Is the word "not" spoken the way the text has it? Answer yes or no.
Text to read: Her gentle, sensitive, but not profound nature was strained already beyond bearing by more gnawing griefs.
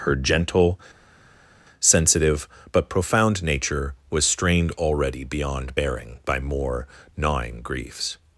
no